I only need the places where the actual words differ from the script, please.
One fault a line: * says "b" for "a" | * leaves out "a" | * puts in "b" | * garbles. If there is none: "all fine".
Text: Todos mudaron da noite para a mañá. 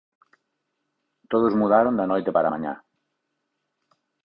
all fine